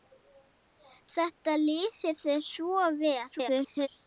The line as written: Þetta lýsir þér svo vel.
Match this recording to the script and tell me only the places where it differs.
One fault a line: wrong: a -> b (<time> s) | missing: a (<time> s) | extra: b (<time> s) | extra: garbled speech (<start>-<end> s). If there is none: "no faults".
extra: garbled speech (3.3-3.9 s)